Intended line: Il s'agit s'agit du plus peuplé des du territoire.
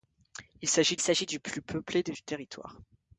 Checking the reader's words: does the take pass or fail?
pass